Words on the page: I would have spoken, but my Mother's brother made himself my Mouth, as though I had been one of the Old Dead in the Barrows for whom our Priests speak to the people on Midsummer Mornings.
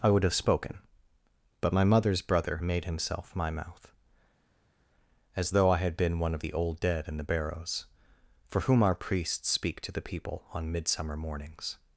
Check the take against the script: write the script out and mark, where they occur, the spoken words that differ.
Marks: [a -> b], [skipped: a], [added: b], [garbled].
I would have spoken, but my Mother's brother made himself my Mouth, as though I had been one of the Old Dead in the Barrows for whom our Priests speak to the people on Midsummer Mornings.